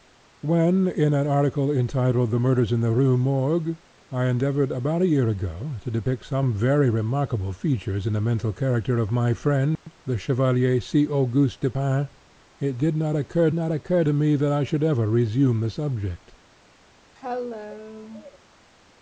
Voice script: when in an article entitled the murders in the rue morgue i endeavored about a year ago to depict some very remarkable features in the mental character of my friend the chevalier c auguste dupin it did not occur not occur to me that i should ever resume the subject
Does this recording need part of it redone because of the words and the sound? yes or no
yes